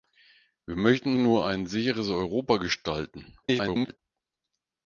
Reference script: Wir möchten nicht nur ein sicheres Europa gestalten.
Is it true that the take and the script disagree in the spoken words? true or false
true